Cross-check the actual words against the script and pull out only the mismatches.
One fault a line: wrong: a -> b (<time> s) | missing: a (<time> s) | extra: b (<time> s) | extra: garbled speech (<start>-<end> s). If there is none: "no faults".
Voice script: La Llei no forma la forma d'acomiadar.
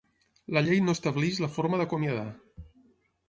wrong: forma -> estableix (1.0 s)